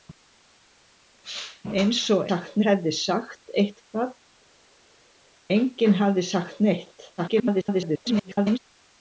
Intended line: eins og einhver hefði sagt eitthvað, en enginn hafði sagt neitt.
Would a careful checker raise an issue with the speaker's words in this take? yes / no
yes